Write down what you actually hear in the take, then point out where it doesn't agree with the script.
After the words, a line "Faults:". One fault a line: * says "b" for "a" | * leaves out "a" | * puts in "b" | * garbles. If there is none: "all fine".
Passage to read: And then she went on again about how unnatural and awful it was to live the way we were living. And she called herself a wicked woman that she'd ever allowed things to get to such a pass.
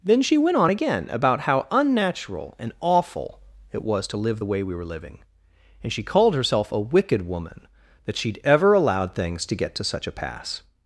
then she went on again about how unnatural and awful it was to live the way we were living. And she called herself a wicked woman that she'd ever allowed things to get to such a pass.
Faults:
* leaves out "And"